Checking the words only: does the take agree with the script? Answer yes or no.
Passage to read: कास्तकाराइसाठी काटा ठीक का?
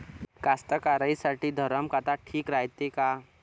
no